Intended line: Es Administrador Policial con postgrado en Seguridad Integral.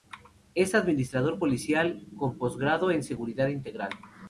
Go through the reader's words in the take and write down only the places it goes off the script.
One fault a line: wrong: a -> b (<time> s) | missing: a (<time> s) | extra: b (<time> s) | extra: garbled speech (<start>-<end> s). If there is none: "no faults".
no faults